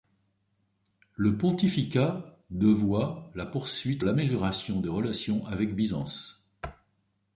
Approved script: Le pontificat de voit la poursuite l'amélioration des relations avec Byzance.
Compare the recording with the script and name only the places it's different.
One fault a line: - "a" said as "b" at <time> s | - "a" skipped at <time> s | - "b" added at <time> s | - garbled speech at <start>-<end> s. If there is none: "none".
none